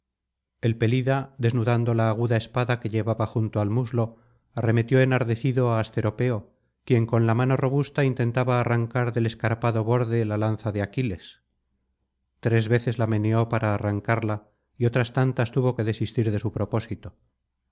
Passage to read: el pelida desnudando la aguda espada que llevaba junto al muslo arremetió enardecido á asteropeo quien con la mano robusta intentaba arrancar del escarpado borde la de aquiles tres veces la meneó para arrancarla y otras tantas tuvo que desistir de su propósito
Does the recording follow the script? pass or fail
fail